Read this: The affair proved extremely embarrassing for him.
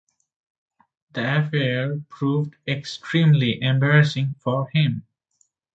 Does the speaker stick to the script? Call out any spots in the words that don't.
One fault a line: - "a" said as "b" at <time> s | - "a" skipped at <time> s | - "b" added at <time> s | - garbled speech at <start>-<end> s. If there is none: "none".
none